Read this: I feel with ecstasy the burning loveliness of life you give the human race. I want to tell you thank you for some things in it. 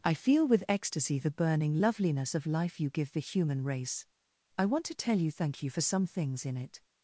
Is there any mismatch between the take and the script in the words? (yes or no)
no